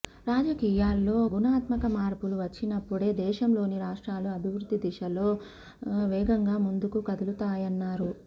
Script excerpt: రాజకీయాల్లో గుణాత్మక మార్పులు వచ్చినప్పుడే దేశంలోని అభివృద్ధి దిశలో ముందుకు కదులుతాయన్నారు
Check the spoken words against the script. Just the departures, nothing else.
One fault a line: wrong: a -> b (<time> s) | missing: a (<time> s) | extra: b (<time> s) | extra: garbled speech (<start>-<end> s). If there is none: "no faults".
extra: రాష్ట్రాలు (3.8 s)
extra: వేగంగా (6.1 s)